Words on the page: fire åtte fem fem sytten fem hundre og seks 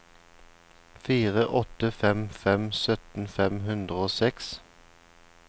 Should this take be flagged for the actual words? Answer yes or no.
no